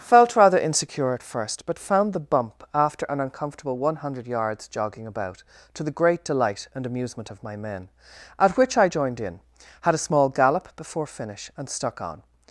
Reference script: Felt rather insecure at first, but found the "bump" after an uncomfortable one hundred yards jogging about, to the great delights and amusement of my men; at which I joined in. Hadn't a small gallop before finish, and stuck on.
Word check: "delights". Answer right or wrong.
wrong